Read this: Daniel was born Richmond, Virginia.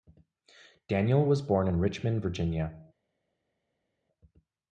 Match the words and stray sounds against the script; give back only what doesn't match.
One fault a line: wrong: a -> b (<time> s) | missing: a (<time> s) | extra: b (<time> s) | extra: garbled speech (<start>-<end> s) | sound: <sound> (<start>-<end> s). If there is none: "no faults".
extra: in (1.6 s)